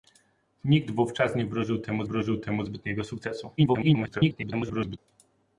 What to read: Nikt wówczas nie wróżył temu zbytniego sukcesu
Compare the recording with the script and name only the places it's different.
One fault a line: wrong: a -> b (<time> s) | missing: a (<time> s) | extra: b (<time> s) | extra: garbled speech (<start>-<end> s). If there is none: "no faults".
extra: wróżył temu (2.0 s)
extra: garbled speech (3.6-5.0 s)